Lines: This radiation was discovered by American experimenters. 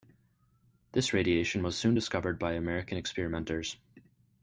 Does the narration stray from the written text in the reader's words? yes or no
yes